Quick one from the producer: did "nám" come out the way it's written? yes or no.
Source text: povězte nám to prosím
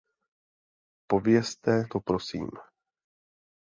no